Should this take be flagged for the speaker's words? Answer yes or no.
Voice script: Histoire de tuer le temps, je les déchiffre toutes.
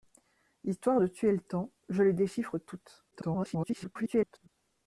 yes